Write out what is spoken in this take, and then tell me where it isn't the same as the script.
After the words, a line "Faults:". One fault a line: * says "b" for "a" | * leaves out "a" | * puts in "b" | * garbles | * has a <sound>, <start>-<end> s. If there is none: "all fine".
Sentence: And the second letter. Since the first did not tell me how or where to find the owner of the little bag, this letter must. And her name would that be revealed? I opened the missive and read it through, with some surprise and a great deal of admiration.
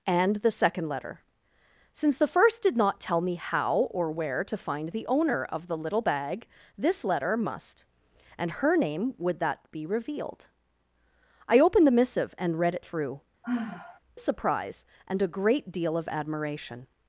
And the second letter. Since the first did not tell me how or where to find the owner of the little bag, this letter must. And her name would that be revealed? I opened the missive and read it through, surprise and a great deal of admiration.
Faults:
* leaves out "with some"
* has a sigh, 13.4-14.0 s